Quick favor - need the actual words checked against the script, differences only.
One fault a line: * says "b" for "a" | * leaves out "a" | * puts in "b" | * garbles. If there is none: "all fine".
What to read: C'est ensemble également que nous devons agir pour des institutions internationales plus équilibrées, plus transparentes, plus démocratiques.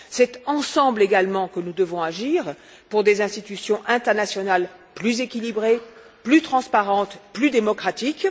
all fine